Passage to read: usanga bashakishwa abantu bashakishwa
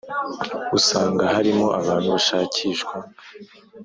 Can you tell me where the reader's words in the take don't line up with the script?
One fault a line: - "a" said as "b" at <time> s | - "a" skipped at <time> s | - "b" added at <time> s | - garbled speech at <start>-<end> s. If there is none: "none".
- "bashakishwa" said as "harimo" at 1.4 s